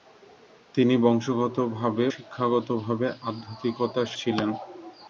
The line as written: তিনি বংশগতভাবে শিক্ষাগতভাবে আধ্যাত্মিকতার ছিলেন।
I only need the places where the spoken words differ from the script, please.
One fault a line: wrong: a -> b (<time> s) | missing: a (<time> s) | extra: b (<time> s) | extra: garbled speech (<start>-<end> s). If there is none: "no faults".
no faults